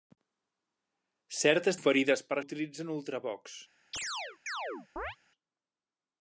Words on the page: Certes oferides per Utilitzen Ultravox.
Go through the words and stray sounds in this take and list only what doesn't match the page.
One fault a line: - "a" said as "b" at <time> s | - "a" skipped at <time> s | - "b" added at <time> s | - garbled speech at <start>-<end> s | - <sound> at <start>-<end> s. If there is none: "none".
- chirp at 3.9-5.2 s